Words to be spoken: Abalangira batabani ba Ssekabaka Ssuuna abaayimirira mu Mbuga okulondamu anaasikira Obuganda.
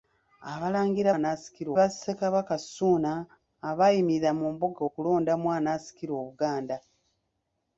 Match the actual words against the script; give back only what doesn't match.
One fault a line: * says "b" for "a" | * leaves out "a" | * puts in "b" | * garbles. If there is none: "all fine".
* says "anaasikira" for "batabani"